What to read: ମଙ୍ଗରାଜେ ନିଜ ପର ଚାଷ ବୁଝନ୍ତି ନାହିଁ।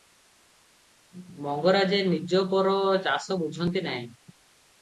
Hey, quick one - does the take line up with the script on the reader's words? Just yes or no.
yes